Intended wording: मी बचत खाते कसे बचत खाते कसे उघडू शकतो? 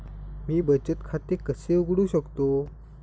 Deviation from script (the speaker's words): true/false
true